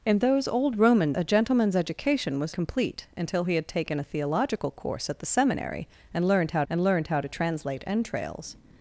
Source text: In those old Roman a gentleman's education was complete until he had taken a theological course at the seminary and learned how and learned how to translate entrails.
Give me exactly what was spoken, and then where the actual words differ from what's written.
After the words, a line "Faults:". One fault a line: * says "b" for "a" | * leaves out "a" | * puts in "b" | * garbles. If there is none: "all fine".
In those old Roman a gentleman's education was complete until he had taken a theological course at the seminary and learned how and learned how to translate entrails.
Faults:
all fine